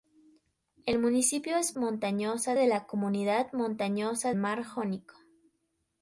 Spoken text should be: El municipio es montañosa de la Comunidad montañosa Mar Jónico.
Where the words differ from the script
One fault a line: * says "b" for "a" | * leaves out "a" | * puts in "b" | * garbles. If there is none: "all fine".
all fine